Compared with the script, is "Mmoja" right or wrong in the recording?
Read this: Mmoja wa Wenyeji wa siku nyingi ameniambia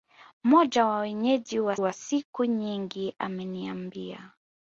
right